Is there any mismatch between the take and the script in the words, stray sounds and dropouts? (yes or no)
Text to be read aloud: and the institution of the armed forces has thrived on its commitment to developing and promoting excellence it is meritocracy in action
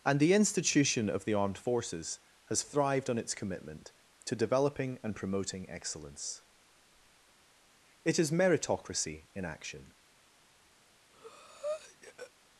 yes